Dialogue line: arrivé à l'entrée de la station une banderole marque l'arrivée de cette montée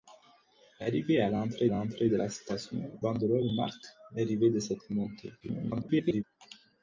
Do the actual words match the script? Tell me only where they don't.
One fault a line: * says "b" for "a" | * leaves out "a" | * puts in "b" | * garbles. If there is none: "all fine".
* puts in "l'entrée"
* leaves out "une"
* garbles